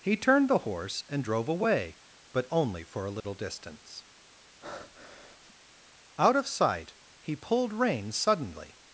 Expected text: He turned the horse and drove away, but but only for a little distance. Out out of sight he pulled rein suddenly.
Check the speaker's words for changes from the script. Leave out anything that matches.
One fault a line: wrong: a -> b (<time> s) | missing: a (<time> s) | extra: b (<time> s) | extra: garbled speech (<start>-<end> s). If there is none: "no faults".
missing: but (2.5 s)
missing: out (6.3 s)